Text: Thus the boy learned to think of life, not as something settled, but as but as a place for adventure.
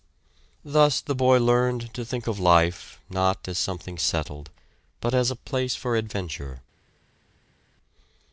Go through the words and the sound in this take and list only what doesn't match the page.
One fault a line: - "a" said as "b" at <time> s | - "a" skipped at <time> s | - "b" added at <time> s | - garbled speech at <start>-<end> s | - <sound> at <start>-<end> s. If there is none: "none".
- "but as" skipped at 5.3 s